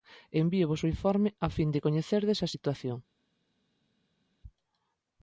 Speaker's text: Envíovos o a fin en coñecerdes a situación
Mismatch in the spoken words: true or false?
true